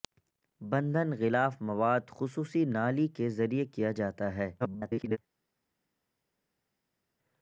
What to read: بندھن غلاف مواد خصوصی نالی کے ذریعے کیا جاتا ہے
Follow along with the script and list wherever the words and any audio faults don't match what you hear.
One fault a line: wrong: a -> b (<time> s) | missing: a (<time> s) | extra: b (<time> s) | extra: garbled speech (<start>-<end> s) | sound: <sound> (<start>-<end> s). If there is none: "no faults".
extra: garbled speech (4.6-5.2 s)